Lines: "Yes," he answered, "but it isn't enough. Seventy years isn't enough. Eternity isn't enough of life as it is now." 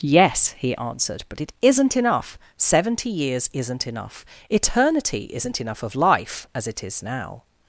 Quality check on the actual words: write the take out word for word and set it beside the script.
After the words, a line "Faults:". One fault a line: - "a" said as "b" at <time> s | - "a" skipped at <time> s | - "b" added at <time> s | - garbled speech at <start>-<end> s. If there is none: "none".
"Yes," he answered, "but it isn't enough. Seventy years isn't enough. Eternity isn't enough of life as it is now."
Faults:
none